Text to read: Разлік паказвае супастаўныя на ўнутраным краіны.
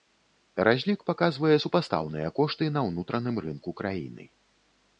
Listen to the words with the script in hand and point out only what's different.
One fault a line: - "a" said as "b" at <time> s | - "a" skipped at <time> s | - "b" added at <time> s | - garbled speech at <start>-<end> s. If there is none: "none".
- "кошты" added at 2.4 s
- "рынку" added at 3.5 s